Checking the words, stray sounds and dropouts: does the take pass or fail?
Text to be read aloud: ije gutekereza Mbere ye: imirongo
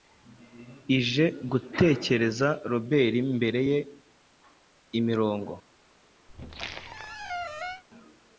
fail